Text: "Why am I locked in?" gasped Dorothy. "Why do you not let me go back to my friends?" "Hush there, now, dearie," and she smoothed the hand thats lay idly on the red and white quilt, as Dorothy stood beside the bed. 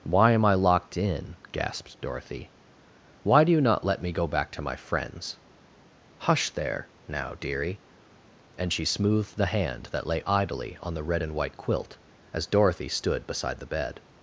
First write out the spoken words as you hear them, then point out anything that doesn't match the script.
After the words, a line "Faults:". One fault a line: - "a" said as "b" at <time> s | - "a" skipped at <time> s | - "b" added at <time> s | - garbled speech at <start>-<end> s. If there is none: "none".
"Why am I locked in?" gasped Dorothy. "Why do you not let me go back to my friends?" "Hush there, now, dearie," and she smoothed the hand that lay idly on the red and white quilt, as Dorothy stood beside the bed.
Faults:
- "thats" said as "that" at 9.9 s